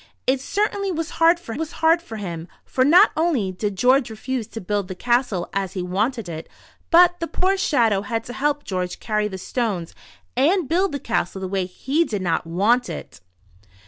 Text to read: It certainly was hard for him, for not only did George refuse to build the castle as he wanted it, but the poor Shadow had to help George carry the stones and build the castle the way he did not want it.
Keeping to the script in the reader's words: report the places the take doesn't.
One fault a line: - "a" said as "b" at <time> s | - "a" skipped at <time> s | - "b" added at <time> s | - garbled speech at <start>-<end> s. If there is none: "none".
- "was hard for" added at 1.5 s